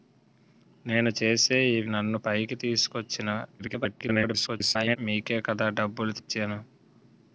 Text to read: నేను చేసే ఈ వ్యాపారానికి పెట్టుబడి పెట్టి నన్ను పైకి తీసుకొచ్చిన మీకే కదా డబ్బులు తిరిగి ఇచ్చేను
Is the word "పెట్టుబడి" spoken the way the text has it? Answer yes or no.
no